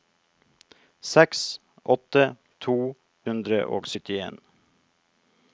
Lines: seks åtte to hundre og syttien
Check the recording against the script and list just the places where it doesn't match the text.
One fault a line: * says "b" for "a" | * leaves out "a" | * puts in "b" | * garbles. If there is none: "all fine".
all fine